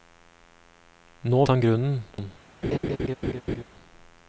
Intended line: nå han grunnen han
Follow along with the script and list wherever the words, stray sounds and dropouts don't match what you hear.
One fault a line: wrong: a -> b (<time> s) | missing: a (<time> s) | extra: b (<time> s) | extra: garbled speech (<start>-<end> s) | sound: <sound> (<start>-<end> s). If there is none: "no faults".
sound: laugh (2.6-3.6 s)